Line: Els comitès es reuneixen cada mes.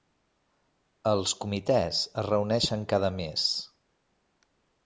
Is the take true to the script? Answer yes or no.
yes